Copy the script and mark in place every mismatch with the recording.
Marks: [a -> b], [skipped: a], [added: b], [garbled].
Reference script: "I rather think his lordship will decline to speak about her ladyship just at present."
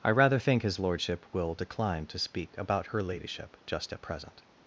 "I rather think his lordship will decline to speak about her ladyship just at present."